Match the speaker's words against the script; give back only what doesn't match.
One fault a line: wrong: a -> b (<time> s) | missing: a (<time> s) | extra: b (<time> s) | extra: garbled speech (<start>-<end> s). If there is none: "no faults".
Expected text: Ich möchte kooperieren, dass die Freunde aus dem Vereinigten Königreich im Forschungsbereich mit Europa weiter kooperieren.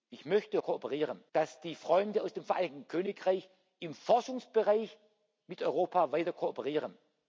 no faults